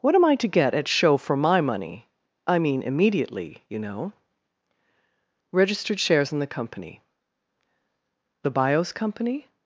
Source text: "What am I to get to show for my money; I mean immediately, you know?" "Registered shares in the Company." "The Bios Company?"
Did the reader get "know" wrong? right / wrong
right